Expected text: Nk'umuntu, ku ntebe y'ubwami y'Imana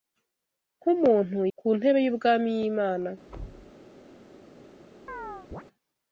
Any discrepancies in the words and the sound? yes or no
yes